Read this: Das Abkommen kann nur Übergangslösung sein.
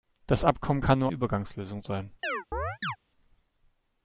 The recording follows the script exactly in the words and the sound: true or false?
false